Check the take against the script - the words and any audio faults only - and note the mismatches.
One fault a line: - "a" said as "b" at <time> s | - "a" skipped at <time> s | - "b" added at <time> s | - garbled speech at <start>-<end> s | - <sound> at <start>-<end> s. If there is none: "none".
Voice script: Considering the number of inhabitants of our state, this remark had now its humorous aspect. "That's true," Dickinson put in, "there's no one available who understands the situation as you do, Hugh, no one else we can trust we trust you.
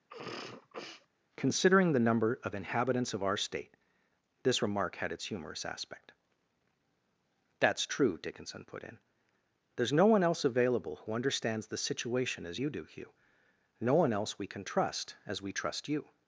- sneeze at 0.1-1.1 s
- "now" skipped at 5.1 s
- "else" added at 10.2 s
- "as" added at 15.3 s